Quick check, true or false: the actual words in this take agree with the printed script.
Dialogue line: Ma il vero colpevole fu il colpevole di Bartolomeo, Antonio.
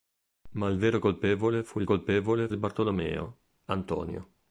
true